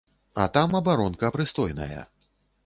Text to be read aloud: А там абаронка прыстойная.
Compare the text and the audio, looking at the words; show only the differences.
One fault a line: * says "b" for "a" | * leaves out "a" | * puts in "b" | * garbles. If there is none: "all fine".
all fine